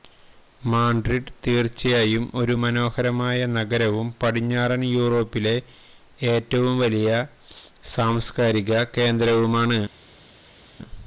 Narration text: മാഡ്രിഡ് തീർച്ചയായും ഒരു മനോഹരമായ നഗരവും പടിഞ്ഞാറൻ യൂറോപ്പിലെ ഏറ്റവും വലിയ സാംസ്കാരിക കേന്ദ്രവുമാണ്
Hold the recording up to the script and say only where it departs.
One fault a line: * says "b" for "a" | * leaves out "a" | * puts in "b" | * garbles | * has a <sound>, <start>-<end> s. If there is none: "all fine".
all fine